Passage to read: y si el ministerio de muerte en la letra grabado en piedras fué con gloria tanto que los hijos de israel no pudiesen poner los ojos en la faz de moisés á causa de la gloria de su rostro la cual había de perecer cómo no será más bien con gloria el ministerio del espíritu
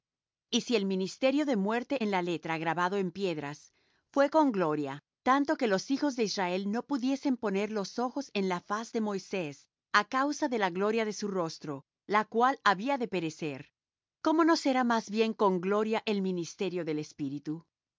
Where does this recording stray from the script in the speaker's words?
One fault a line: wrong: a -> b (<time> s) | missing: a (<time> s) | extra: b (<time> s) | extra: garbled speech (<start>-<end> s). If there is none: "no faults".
no faults